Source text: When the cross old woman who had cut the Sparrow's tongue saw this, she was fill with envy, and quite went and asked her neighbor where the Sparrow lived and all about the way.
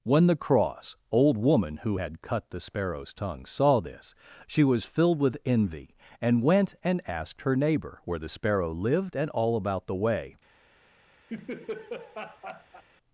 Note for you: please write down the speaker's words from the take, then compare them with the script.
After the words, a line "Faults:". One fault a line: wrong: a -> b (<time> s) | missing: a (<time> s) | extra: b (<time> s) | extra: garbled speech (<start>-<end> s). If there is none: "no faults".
When the cross old woman who had cut the Sparrow's tongue saw this, she was filled with envy, and went and asked her neighbor where the Sparrow lived and all about the way.
Faults:
wrong: fill -> filled (4.8 s)
missing: quite (6.4 s)